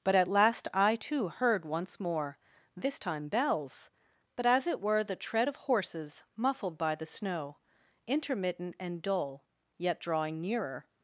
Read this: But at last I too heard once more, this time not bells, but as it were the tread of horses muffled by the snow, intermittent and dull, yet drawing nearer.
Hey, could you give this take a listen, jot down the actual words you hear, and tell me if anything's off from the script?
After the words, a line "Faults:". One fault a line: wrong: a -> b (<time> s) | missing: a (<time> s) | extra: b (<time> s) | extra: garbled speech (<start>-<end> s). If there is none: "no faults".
But at last I too heard once more, this time bells, but as it were the tread of horses muffled by the snow, intermittent and dull, yet drawing nearer.
Faults:
missing: not (3.3 s)